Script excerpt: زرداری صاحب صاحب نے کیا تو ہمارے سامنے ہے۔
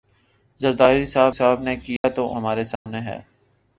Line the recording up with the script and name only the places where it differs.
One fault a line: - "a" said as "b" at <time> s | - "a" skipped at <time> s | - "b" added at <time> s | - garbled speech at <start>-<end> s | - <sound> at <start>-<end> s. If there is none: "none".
- dropout at 2.0-2.0 s
- dropout at 2.8-2.9 s